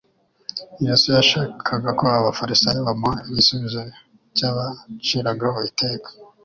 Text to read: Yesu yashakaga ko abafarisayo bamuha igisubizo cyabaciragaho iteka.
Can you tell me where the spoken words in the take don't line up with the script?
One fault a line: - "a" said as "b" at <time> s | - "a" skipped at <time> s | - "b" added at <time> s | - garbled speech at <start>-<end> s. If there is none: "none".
none